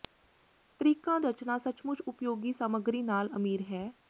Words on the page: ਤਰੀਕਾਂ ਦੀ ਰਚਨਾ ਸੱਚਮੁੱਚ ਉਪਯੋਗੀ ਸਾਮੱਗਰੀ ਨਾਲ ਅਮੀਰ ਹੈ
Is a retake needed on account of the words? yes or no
yes